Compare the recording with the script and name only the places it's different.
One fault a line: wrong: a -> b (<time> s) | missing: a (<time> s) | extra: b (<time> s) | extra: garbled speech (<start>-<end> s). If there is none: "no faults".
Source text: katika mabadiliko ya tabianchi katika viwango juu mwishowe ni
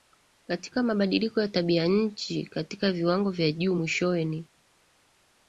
extra: vya (3.3 s)